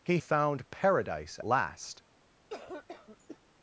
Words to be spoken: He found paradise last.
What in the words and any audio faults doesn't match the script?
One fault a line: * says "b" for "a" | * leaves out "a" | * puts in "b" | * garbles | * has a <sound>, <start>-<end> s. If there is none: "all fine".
* has a cough, 2.5-3.4 s